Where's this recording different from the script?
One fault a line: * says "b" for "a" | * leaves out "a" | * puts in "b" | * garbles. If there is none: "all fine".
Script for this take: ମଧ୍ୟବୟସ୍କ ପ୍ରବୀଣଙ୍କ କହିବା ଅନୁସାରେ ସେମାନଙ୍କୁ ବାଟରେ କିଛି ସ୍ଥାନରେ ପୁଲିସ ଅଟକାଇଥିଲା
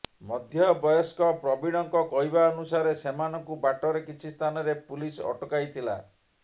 all fine